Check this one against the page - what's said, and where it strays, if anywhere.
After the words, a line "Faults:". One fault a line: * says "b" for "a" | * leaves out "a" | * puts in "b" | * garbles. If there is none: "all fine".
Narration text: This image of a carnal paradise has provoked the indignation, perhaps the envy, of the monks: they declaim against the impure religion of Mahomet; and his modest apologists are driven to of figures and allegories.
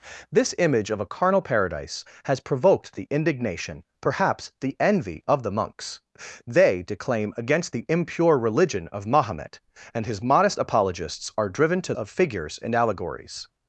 This image of a carnal paradise has provoked the indignation, perhaps the envy, of the monks: they declaim against the impure religion of Mahomet; and his modest apologists are driven to of figures and allegories.
Faults:
all fine